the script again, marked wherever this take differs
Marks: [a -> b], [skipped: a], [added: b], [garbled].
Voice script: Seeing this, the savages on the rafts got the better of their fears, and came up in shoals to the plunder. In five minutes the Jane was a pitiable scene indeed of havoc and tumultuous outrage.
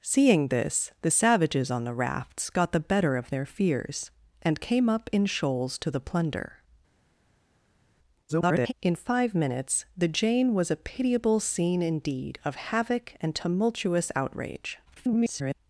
Seeing this, the savages on the rafts got the better of their fears, and came up in shoals to the plunder. [garbled] In five minutes the Jane was a pitiable scene indeed of havoc and tumultuous outrage. [garbled]